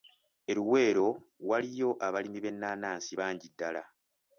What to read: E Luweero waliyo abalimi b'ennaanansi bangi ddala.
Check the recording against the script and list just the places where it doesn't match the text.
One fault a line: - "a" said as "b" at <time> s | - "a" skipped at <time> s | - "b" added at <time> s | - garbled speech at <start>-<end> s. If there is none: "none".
none